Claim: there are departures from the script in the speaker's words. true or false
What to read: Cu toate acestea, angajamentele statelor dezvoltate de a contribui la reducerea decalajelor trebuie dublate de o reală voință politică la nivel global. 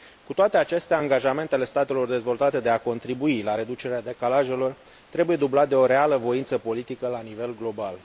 false